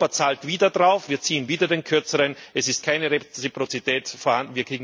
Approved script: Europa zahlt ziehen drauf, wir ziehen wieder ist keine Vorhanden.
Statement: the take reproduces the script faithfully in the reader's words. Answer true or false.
false